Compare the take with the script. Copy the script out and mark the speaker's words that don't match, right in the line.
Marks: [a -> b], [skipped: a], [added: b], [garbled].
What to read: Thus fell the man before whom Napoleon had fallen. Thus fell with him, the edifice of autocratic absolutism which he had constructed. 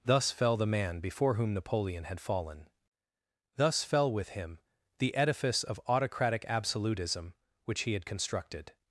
Thus fell the man before whom Napoleon had fallen. Thus fell with him, the edifice of autocratic absolutism which he had constructed.